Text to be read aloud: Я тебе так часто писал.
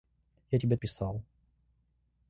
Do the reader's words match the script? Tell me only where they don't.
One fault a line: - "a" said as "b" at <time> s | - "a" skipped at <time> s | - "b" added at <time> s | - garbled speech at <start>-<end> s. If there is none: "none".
- "так часто" skipped at 0.8 s